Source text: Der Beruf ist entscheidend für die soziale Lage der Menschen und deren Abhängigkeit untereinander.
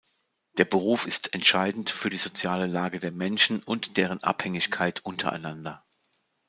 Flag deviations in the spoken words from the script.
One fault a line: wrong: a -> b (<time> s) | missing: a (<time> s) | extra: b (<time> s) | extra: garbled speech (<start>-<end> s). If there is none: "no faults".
no faults